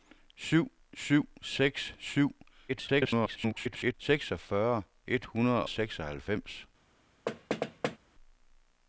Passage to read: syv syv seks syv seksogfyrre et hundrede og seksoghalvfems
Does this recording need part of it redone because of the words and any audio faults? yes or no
yes